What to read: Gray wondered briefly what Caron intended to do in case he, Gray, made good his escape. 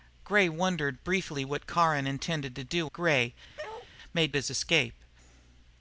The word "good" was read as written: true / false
false